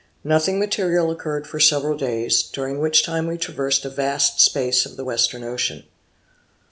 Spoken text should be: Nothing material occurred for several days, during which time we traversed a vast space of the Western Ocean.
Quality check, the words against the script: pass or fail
pass